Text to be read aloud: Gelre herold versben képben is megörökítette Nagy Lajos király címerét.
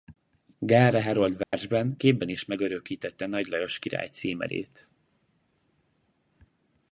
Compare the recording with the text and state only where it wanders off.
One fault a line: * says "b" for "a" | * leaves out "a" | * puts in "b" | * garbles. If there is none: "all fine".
all fine